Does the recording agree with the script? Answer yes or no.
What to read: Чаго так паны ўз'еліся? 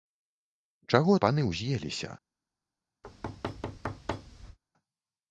no